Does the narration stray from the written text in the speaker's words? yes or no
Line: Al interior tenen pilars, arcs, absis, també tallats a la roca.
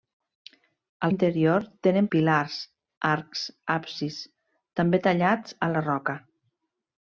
no